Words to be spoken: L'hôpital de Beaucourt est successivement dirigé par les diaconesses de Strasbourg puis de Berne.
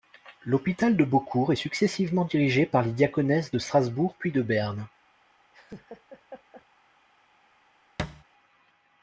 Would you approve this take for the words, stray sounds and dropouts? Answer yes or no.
no